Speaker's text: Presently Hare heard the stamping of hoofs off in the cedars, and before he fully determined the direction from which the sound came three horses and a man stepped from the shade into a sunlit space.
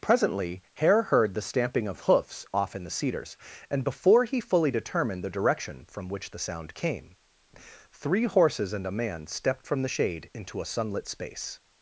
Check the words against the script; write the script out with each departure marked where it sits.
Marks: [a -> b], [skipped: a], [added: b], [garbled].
Presently Hare heard the stamping of hoofs off in the cedars, and before he fully determined the direction from which the sound came three horses and a man stepped from the shade into a sunlit space.